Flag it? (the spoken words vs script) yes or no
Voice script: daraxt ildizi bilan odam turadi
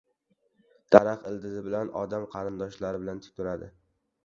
yes